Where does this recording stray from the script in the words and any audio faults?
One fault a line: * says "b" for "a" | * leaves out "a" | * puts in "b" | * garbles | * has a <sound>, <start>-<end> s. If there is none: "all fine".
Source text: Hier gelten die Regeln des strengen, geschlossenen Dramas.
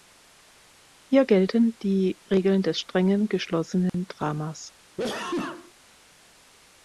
* has a dropout, 3.9-3.9 s
* has a sneeze, 5.0-5.7 s